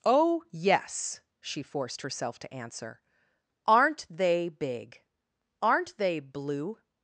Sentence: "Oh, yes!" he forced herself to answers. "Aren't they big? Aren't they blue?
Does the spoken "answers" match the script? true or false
false